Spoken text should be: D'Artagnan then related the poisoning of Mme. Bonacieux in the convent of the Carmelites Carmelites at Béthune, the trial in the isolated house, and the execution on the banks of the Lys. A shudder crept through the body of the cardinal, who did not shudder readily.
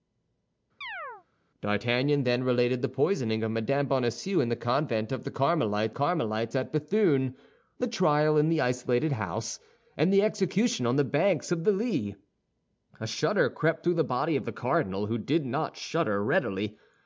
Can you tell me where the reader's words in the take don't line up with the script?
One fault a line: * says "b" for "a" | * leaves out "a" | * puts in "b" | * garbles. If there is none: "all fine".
all fine